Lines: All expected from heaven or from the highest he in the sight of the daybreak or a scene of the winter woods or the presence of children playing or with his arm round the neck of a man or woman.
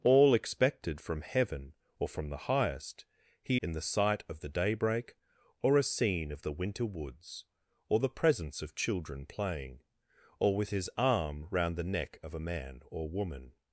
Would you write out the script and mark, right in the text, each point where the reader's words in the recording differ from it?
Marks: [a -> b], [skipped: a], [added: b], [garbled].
All expected from heaven or from the highest he in the sight of the daybreak or a scene of the winter woods or the presence of children playing or with his arm round the neck of a man or woman.